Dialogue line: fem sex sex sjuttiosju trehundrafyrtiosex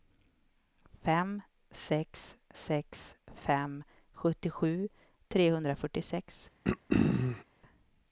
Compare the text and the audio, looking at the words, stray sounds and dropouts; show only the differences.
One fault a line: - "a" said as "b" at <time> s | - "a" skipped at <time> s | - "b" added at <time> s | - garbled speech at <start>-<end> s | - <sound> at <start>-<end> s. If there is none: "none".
- "fem" added at 3.5 s
- throat clearing at 6.6-7.4 s